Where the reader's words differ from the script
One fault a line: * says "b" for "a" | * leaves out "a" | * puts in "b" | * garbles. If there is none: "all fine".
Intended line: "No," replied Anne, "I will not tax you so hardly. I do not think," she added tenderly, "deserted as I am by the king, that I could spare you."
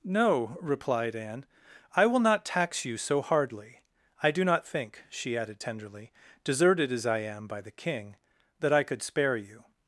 all fine